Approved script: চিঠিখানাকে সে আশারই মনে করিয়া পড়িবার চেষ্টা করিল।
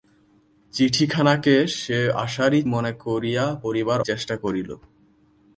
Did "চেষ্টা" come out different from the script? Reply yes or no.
no